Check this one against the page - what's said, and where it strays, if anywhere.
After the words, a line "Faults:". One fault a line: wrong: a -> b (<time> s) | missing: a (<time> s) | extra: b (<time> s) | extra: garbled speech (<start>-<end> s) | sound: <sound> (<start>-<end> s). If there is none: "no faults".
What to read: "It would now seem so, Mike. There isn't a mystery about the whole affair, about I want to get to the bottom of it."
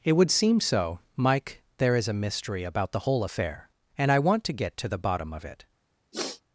"It would seem so, Mike. There is a mystery about the whole affair, and I want to get to the bottom of it."
Faults:
missing: now (0.3 s)
wrong: isn't -> is (1.9 s)
wrong: about -> and (4.0 s)
sound: sniff (6.1-6.4 s)